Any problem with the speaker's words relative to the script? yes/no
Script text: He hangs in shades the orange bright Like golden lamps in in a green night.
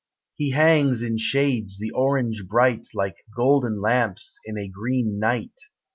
yes